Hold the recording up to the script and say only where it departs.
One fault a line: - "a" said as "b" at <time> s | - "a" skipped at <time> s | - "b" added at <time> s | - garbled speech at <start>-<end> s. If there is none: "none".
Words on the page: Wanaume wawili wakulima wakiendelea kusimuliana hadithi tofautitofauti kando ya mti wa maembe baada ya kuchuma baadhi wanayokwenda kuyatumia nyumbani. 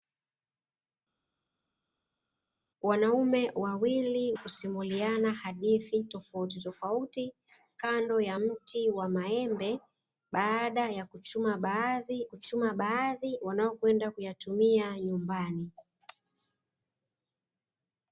- "wakulima wakiendelea" skipped at 4.3 s
- "kuchuma baadhi" added at 12.3 s